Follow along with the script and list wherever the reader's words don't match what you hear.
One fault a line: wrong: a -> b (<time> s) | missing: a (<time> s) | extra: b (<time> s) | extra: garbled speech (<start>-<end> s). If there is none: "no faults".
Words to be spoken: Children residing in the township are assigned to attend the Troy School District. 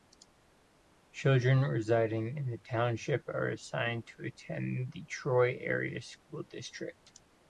extra: Area (5.6 s)